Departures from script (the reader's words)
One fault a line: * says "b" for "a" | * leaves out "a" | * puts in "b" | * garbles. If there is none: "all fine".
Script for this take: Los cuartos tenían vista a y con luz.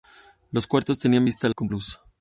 all fine